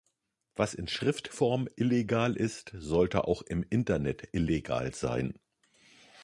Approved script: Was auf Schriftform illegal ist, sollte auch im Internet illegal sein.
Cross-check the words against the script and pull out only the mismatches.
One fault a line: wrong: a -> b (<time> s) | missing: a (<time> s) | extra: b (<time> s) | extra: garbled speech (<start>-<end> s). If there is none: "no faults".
wrong: auf -> in (0.7 s)